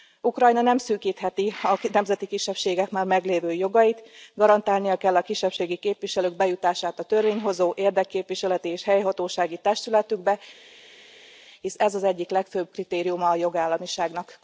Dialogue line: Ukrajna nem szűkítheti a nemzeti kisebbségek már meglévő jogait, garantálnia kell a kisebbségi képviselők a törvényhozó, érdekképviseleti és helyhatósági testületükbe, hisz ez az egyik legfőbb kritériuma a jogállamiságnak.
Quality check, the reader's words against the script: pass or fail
fail